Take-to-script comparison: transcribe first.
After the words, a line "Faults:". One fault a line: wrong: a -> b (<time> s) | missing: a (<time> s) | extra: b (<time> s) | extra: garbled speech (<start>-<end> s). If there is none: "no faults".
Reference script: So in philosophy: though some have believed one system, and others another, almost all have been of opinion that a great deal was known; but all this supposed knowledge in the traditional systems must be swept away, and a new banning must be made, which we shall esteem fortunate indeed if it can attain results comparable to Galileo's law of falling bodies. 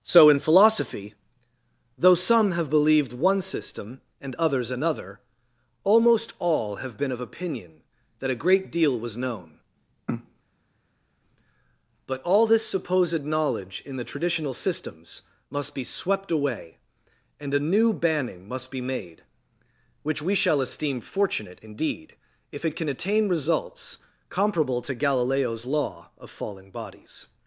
So in philosophy: though some have believed one system, and others another, almost all have been of opinion that a great deal was known; but all this supposed knowledge in the traditional systems must be swept away, and a new banning must be made, which we shall esteem fortunate indeed if it can attain results comparable to Galileo's law of falling bodies.
Faults:
no faults